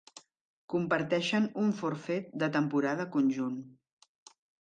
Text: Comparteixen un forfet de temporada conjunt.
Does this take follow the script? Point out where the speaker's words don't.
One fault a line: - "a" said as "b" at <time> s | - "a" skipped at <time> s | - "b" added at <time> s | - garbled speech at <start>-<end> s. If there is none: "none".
none